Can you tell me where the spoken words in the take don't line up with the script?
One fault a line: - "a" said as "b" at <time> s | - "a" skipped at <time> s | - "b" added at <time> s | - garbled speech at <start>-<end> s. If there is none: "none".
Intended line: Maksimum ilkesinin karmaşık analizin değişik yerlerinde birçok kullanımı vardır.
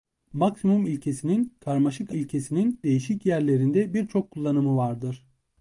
- "analizin" said as "ilkesinin" at 2.1 s